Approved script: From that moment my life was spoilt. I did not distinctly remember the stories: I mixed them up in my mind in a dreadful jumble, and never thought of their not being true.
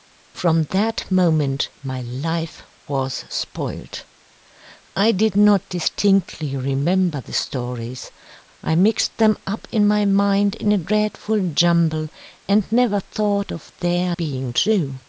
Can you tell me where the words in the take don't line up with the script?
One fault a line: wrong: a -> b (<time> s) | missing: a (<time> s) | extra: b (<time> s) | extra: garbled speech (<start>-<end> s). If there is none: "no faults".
missing: not (14.2 s)